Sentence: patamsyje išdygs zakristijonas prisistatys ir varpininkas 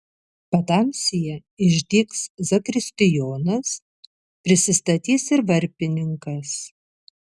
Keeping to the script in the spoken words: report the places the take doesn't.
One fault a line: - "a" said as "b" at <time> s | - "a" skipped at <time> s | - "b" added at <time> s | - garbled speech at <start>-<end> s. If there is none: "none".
none